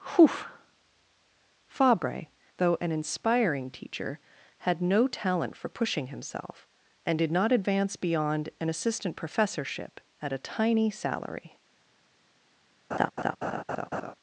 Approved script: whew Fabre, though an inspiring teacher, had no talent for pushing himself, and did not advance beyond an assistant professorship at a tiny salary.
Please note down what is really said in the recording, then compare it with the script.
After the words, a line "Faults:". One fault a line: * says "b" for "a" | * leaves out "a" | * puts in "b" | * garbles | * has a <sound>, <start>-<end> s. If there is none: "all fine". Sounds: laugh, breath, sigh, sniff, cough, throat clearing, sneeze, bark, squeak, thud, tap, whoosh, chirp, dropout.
whew Fabre, though an inspiring teacher, had no talent for pushing himself, and did not advance beyond an assistant professorship at a tiny salary.
Faults:
* has a laugh, 12.9-14.1 s